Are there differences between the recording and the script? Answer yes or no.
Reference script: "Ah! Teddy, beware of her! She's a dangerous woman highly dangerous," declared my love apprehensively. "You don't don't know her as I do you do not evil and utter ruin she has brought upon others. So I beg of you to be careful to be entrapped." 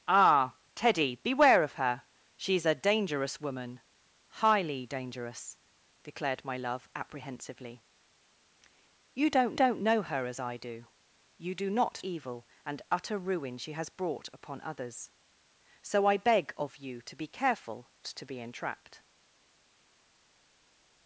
no